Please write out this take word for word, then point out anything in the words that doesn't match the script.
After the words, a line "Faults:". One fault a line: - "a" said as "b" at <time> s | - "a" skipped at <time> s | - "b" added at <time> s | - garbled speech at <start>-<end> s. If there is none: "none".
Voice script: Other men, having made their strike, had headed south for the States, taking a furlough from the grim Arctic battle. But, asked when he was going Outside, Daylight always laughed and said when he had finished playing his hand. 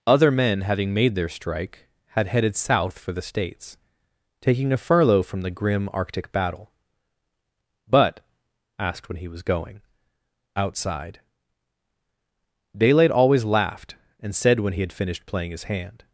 Other men, having made their strike, had headed south for the States, taking a furlough from the grim Arctic battle. But, asked when he was going Outside, Daylight always laughed and said when he had finished playing his hand.
Faults:
none